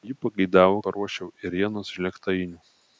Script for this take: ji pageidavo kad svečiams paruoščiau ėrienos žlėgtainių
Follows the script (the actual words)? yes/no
no